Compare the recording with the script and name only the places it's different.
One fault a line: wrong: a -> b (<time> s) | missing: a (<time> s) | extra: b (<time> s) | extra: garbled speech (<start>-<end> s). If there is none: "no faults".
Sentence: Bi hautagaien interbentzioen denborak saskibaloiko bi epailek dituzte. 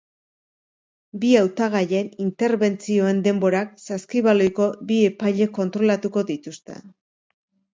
extra: kontrolatuko (5.6 s)